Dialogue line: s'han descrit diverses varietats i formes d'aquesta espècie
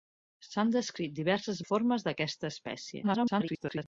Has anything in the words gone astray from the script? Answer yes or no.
yes